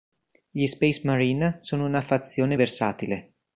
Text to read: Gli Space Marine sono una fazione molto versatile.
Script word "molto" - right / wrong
wrong